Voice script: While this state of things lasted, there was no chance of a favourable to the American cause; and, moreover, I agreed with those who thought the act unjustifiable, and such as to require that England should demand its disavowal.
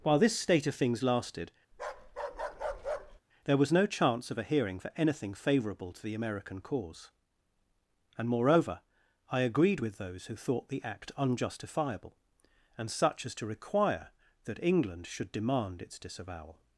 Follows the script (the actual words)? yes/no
no